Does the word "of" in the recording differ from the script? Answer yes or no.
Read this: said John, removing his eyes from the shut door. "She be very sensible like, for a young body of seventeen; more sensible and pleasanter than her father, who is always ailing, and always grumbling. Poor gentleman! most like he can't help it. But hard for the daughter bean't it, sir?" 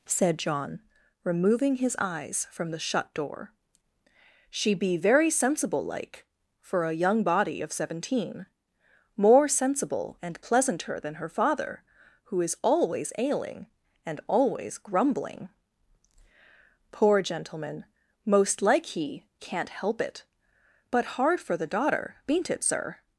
no